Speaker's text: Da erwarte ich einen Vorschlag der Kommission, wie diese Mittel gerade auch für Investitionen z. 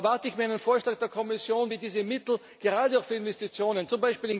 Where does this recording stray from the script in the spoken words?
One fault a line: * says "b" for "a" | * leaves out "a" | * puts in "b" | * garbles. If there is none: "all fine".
* puts in "mir"